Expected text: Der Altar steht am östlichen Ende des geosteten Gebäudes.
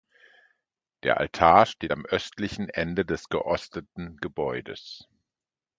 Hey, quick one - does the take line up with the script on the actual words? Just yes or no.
yes